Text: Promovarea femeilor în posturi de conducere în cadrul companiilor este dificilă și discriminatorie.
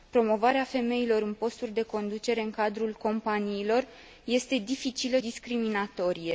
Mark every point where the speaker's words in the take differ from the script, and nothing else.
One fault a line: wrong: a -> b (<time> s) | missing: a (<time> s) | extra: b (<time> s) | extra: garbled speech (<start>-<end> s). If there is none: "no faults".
missing: și (5.2 s)